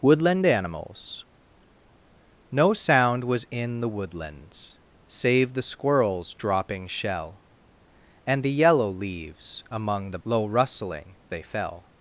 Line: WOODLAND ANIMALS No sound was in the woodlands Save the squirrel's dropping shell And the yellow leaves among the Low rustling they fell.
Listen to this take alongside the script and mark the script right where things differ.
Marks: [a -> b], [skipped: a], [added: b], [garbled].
WOODLAND ANIMALS No sound was in the woodlands Save the squirrel's dropping shell And the yellow leaves among the Low rustling they fell.